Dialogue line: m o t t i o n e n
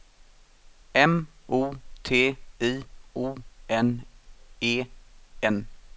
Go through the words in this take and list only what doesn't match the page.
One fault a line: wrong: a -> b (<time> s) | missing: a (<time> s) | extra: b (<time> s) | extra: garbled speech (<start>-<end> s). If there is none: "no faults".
missing: t (2.4 s)